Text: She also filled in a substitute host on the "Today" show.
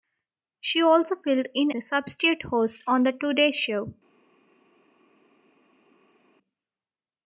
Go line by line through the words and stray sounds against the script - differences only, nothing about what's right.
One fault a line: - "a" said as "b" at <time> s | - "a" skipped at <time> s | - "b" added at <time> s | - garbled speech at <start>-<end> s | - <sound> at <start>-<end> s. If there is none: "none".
none